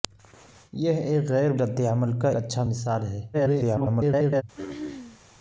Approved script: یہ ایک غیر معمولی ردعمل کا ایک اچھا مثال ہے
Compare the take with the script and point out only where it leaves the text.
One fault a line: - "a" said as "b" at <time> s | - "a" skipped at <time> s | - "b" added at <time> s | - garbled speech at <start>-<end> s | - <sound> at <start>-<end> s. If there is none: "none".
- "معمولی" skipped at 1.5 s
- "ایک" skipped at 2.3 s
- garbled speech at 3.3-4.4 s
- throat clearing at 4.5-5.2 s